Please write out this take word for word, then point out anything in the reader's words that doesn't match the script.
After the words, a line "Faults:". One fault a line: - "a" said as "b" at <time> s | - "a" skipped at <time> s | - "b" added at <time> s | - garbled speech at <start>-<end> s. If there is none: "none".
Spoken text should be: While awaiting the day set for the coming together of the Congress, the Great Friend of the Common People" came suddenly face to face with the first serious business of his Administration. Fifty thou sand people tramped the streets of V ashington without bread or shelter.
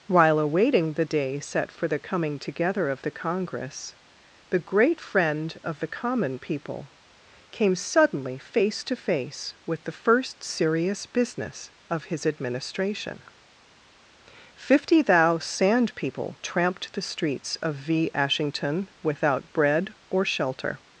While awaiting the day set for the coming together of the Congress, the Great Friend of the Common People" came suddenly face to face with the first serious business of his Administration. Fifty thou sand people tramped the streets of V ashington without bread or shelter.
Faults:
none